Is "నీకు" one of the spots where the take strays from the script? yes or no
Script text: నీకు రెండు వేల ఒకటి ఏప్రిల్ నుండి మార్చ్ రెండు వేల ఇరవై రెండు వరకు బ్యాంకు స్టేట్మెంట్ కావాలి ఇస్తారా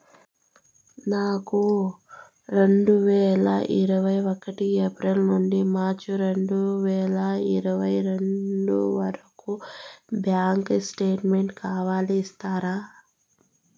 yes